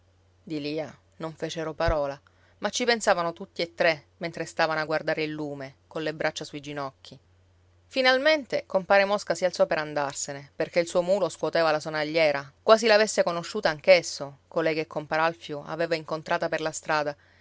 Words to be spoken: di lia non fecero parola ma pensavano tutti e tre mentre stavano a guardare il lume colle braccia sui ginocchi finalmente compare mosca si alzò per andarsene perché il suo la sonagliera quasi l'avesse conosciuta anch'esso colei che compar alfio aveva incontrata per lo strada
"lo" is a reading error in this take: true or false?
true